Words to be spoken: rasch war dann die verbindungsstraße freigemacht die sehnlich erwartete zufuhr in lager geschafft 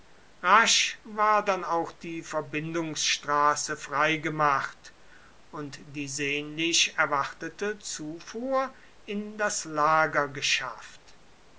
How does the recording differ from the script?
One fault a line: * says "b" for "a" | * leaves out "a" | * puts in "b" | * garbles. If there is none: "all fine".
* puts in "auch"
* puts in "und"
* puts in "das"